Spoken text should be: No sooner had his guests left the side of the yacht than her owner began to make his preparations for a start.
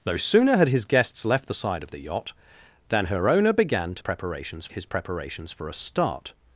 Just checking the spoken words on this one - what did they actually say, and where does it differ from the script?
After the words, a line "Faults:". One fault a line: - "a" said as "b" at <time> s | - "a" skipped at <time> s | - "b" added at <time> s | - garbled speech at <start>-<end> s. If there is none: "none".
No sooner had his guests left the side of the yacht than her owner began to preparations his preparations for a start.
Faults:
- "make" said as "preparations" at 4.0 s